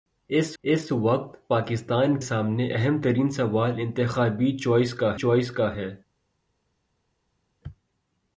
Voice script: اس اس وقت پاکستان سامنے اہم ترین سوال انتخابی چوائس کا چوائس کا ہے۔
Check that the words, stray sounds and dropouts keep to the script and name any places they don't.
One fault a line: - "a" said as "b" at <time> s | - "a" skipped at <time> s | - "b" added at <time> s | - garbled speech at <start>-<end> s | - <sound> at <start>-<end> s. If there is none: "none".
none